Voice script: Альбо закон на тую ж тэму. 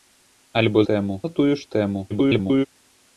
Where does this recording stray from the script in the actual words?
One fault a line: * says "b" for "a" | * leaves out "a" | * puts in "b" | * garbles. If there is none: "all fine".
* says "тэму" for "закон"
* garbles